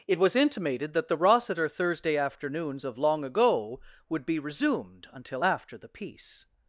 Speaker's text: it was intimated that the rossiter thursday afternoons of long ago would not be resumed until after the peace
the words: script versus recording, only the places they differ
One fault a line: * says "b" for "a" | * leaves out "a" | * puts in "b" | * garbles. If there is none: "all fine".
* leaves out "not"